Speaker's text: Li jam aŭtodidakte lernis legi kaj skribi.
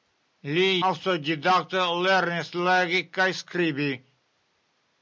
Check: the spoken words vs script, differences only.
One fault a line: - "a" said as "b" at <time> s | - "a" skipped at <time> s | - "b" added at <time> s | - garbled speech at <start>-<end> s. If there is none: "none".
- "jam" skipped at 0.7 s